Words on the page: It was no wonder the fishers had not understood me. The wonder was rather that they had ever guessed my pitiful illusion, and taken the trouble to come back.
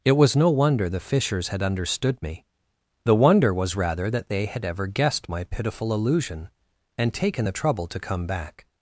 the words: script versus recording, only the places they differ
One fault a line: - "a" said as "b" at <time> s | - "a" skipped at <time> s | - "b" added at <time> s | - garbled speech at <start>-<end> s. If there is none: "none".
- "not" skipped at 1.6 s